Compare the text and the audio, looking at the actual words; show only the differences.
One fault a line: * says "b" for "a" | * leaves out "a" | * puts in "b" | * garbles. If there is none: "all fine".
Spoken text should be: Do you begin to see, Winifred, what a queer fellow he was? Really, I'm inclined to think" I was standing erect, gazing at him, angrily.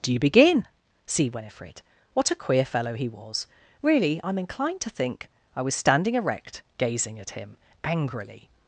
* leaves out "to"